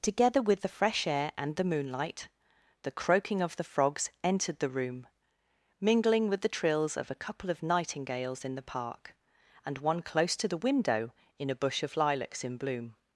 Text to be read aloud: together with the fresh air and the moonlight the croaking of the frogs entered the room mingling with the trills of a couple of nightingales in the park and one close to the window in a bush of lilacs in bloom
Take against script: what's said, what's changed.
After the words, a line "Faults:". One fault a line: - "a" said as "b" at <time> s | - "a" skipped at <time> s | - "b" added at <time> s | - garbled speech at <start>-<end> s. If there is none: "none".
together with the fresh air and the moonlight the croaking of the frogs entered the room mingling with the trills of a couple of nightingales in the park and one close to the window in a bush of lilacs in bloom
Faults:
none